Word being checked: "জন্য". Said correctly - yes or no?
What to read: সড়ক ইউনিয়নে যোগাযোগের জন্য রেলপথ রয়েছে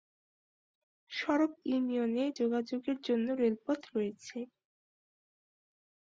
yes